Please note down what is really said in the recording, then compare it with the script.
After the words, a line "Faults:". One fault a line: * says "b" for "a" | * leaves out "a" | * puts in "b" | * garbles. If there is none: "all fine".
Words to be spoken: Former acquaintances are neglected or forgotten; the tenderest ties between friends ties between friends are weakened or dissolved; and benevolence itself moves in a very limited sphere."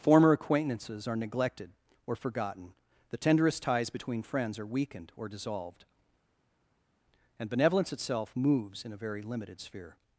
Former acquaintances are neglected or forgotten; the tenderest ties between friends are weakened or dissolved; and benevolence itself moves in a very limited sphere."
Faults:
* leaves out "ties between friends"